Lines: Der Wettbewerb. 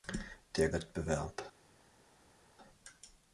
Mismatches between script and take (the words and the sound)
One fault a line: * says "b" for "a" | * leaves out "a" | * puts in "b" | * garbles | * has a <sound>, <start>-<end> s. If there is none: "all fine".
all fine